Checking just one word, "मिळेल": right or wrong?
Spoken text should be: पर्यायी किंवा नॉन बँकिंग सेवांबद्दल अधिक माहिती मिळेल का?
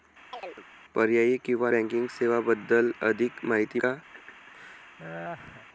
wrong